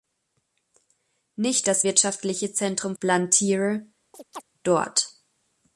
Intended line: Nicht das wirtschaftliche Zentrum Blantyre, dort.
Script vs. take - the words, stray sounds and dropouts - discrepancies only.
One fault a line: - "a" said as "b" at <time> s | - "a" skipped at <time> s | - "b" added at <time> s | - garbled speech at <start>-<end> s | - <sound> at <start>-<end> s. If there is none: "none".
- chirp at 4.1-4.4 s